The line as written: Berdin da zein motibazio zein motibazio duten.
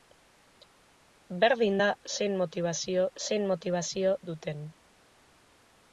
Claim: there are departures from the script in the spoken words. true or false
false